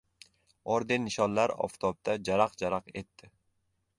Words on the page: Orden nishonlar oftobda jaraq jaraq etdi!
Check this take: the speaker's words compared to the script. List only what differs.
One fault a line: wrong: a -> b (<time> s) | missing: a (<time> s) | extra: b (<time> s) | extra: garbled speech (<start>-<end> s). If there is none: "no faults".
no faults